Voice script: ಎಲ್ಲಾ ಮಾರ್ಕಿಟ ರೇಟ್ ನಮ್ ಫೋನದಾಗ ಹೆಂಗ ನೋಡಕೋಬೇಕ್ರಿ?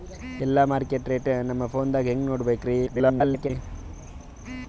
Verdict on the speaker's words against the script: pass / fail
fail